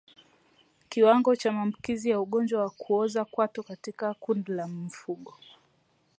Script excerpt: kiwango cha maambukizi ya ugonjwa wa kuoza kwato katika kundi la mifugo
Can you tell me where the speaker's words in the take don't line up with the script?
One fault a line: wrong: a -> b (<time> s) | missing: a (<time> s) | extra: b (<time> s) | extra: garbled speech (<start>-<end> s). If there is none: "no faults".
no faults